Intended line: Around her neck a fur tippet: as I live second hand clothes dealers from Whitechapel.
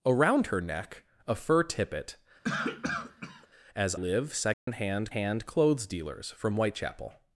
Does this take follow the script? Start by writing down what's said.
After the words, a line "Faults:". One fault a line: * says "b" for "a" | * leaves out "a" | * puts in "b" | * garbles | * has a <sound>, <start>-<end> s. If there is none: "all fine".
Around her neck a fur tippet: as live second hand hand clothes dealers from Whitechapel.
Faults:
* has a cough, 2.4-3.5 s
* leaves out "I"
* has a dropout, 4.5-4.7 s
* puts in "hand"